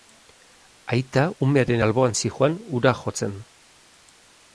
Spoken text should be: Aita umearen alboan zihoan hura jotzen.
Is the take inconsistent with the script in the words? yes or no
no